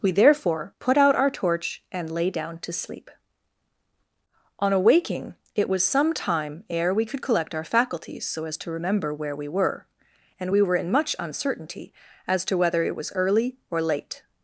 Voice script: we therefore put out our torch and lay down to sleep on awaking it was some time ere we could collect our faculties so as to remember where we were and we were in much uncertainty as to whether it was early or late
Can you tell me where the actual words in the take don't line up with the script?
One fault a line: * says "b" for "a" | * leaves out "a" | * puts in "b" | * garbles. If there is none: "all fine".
all fine